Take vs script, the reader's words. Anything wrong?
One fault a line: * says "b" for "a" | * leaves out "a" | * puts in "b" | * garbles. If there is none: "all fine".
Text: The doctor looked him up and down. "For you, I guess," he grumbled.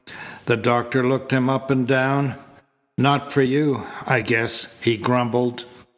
* puts in "Not"